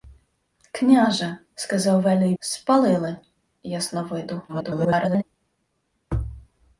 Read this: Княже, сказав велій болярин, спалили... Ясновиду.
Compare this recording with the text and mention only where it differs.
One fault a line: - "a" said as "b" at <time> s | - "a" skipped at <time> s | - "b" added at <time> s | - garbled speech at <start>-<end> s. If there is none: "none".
- "болярин" skipped at 2.4 s
- garbled speech at 4.5-5.2 s